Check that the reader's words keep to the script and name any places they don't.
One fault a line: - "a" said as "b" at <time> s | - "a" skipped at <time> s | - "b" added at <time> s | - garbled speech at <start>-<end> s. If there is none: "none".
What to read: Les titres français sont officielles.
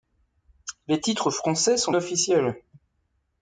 none